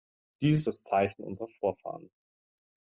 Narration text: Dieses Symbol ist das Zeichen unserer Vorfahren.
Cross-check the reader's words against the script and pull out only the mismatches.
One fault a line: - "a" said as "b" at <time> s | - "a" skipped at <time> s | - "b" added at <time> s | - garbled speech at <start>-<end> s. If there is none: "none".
- "Symbol ist" skipped at 0.7 s